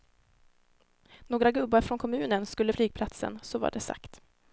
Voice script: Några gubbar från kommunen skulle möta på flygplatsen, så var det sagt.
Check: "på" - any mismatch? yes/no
yes